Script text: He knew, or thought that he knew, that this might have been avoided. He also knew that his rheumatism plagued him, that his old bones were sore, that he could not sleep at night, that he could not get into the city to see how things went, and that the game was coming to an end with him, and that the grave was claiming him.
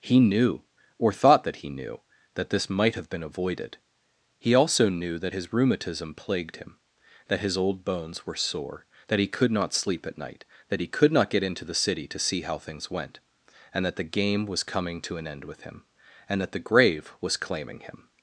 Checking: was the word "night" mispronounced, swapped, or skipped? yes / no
no